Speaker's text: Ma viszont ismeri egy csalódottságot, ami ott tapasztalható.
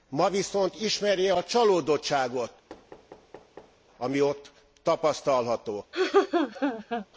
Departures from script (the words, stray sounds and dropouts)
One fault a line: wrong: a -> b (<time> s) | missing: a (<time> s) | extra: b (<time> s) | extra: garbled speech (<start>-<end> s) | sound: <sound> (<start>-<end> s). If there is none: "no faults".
wrong: egy -> a (1.3 s)
sound: thud (2.7-3.8 s)
sound: laugh (5.9-7.1 s)